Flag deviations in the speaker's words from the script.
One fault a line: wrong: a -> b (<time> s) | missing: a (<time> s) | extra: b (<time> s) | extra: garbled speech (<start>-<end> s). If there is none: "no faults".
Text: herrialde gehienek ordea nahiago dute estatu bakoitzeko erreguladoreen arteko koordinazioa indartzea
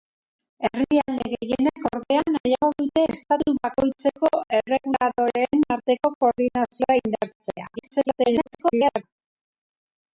extra: garbled speech (7.8-9.0 s)